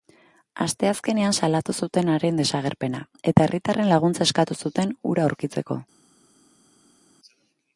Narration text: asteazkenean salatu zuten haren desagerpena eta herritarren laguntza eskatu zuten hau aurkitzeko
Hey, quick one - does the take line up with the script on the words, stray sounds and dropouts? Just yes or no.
no